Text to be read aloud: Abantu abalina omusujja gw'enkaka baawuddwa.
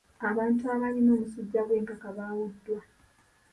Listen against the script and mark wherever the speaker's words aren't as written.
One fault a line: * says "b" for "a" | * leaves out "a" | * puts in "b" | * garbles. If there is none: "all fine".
all fine